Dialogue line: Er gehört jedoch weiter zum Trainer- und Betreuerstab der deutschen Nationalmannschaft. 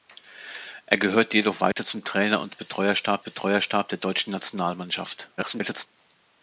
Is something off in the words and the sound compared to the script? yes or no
yes